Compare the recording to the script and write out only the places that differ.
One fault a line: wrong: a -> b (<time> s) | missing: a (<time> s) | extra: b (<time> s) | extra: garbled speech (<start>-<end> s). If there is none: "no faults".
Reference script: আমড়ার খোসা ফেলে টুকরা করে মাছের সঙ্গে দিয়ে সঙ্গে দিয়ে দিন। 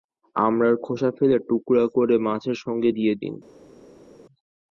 missing: সঙ্গে দিয়ে (3.1 s)